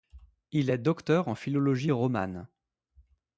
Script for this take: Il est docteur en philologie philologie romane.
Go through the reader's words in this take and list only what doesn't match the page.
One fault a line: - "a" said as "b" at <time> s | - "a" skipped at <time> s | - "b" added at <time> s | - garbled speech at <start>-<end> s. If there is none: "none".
- "philologie" skipped at 1.9 s